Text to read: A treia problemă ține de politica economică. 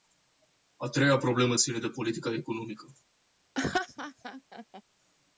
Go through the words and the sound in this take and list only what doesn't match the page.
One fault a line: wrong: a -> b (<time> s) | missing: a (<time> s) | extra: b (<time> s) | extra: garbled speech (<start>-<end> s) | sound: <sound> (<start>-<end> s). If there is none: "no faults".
sound: laugh (3.6-4.8 s)